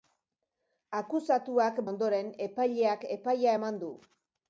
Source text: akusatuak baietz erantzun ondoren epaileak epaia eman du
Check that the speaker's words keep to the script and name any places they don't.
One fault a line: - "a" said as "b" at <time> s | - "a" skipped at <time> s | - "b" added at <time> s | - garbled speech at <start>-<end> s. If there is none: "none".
- "baietz erantzun" skipped at 1.8 s